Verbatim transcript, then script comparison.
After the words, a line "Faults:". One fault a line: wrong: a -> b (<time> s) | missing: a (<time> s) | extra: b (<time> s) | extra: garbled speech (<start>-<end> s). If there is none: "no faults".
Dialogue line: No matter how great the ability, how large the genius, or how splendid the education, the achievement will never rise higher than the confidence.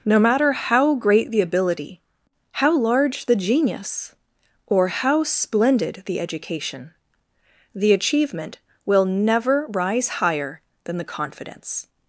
No matter how great the ability, how large the genius, or how splendid the education, the achievement will never rise higher than the confidence.
Faults:
no faults